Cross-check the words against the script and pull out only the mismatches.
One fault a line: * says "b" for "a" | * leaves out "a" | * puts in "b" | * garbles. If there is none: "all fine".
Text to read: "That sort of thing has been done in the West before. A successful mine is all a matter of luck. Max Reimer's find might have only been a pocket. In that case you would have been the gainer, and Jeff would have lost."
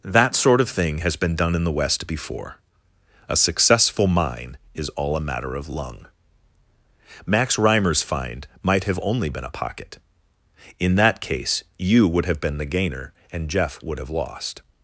* says "lung" for "luck"